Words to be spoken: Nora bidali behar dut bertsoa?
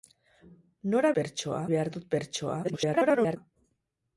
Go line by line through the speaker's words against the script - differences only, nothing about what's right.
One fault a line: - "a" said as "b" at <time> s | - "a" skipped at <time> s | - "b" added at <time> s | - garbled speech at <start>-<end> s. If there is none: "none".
- "bidali" said as "bertsoa" at 1.2 s
- garbled speech at 2.6-3.4 s